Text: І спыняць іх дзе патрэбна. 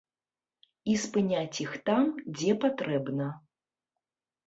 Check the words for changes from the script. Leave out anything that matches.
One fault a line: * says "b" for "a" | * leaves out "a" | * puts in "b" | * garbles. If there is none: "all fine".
* puts in "там"